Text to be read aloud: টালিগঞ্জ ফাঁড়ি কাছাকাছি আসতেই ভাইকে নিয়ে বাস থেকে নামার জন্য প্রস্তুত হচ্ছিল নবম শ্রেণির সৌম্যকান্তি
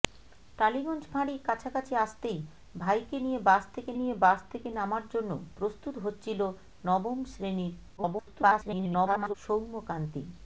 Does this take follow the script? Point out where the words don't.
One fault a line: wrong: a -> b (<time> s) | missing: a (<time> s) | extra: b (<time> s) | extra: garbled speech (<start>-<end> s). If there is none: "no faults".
extra: নিয়ে বাস থেকে (3.9 s)
extra: garbled speech (8.0-9.3 s)